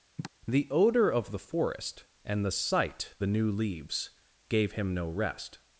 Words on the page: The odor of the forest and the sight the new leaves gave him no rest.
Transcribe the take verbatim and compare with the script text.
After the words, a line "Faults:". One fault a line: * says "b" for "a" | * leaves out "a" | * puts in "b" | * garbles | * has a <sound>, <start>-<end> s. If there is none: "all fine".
The odor of the forest and the sight the new leaves gave him no rest.
Faults:
* has a sigh, 0.2-0.3 s